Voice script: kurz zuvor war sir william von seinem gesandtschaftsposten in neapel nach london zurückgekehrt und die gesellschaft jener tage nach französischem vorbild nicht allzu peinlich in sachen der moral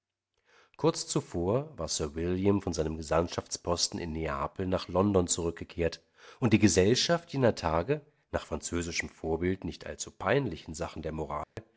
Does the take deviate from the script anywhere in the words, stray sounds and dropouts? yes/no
yes